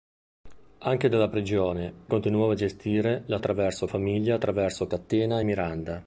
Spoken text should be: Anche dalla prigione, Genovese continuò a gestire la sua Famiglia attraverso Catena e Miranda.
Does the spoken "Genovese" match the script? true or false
false